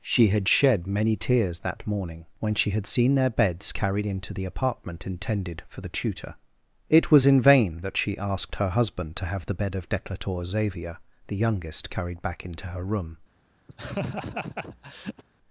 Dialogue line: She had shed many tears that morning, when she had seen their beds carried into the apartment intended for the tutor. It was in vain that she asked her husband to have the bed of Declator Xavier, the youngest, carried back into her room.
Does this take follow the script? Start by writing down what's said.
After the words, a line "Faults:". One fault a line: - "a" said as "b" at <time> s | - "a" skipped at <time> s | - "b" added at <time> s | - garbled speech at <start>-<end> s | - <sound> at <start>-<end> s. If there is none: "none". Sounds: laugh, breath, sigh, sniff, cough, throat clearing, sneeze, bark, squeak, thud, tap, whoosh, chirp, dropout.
She had shed many tears that morning, when she had seen their beds carried into the apartment intended for the tutor. It was in vain that she asked her husband to have the bed of Declator Xavier, the youngest, carried back into her room.
Faults:
- laugh at 13.7-15.2 s